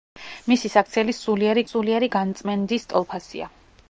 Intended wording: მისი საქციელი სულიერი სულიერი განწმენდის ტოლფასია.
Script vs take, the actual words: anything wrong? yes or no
no